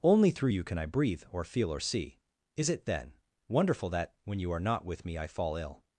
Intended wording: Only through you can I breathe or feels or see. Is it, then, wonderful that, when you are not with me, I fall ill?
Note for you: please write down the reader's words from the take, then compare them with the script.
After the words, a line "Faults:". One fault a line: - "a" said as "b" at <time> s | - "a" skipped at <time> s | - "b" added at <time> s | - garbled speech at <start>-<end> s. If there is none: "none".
Only through you can I breathe or feel or see. Is it, then, wonderful that, when you are not with me, I fall ill?
Faults:
- "feels" said as "feel" at 1.4 s